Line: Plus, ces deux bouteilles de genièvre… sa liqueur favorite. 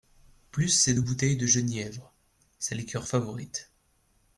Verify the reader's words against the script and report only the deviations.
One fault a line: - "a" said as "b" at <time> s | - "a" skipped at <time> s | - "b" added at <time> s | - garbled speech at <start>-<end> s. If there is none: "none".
none